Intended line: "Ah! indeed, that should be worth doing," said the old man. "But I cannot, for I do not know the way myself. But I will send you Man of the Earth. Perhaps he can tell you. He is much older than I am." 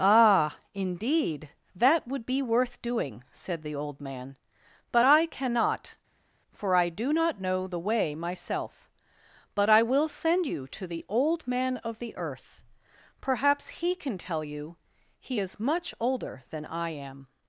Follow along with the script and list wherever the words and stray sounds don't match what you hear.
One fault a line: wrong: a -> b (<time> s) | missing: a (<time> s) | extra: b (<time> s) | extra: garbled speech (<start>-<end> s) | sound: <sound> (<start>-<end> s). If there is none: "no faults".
wrong: should -> would (2.1 s)
extra: to the Old (10.7 s)